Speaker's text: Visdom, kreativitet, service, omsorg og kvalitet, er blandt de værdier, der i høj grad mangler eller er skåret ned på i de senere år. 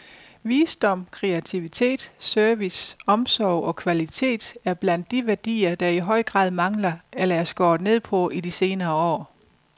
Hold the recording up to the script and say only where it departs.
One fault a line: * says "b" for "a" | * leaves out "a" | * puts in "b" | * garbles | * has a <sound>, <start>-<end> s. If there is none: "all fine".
all fine